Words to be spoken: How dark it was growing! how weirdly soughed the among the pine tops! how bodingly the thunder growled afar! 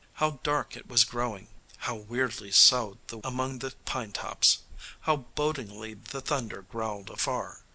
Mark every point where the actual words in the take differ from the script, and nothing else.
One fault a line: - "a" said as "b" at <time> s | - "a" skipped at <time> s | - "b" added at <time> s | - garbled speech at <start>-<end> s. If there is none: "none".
none